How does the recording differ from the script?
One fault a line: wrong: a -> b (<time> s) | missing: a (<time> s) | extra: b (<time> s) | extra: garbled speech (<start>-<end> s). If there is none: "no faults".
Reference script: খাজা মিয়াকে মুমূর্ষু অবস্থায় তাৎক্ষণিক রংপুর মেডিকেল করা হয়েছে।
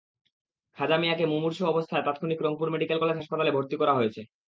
extra: কলেজ হাসপাতালে ভর্তি (3.0 s)